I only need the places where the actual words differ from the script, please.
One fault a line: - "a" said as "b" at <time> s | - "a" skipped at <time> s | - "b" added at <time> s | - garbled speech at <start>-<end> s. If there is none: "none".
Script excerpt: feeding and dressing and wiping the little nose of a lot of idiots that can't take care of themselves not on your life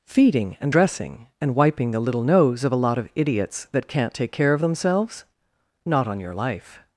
none